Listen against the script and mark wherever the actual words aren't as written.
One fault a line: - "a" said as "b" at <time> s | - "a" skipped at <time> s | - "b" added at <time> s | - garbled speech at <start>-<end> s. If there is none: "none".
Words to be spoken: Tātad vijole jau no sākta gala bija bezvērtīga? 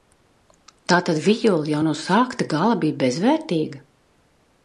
none